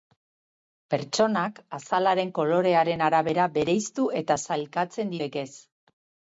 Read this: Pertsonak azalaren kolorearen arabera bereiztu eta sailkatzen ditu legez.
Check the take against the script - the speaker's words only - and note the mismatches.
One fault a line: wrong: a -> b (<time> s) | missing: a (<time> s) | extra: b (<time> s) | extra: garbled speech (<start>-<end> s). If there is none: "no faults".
missing: ditu (5.2 s)